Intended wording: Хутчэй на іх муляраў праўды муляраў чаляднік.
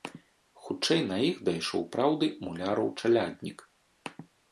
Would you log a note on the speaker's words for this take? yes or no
yes